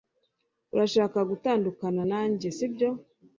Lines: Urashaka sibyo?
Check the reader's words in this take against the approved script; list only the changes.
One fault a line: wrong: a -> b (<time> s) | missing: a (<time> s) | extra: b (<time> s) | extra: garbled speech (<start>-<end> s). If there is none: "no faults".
extra: gutandukana nanjye (1.3 s)